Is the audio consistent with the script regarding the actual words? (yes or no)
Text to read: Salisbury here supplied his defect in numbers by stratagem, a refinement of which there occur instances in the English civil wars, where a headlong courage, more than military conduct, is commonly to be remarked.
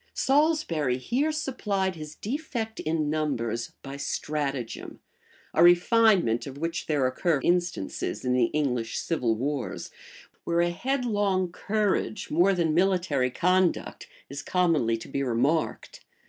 yes